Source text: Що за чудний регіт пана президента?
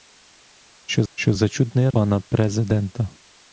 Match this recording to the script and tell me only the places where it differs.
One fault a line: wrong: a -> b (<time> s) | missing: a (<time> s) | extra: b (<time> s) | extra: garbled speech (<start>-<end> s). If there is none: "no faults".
extra: що (1.1 s)
missing: регіт (1.9 s)